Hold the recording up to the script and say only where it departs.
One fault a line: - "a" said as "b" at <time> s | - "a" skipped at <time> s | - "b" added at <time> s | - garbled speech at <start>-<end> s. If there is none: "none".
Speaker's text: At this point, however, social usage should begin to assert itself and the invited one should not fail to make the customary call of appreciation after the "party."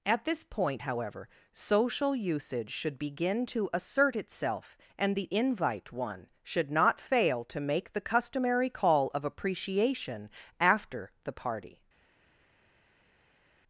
- "invited" said as "invite" at 5.3 s